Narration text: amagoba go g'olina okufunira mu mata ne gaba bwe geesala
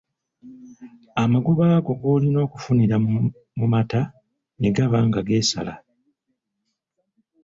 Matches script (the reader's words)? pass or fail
fail